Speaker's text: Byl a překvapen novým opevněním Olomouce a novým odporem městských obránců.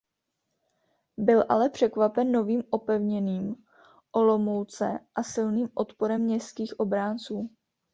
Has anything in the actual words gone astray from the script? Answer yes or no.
yes